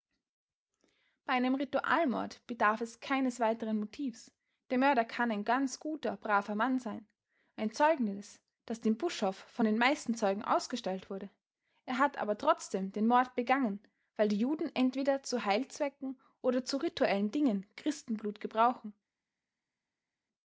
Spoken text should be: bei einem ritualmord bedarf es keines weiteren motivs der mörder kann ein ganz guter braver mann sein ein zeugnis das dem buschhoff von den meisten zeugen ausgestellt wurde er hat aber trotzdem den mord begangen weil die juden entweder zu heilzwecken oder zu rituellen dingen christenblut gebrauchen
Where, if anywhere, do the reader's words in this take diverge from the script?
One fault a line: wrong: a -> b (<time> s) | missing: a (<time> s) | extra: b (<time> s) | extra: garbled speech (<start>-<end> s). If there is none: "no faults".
no faults